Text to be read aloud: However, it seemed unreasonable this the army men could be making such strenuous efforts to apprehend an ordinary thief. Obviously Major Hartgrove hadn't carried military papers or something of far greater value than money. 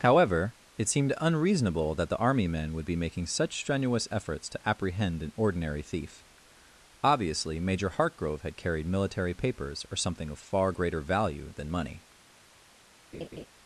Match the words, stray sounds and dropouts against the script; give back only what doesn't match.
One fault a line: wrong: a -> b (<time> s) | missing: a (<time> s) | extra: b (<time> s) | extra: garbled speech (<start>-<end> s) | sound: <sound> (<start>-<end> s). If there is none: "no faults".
wrong: this -> that (1.9 s)
wrong: could -> would (2.7 s)
wrong: hadn't -> had (8.4 s)
sound: laugh (13.1-13.5 s)